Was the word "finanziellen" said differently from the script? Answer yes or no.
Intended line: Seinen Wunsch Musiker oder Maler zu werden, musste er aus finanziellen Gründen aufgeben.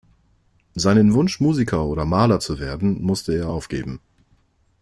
yes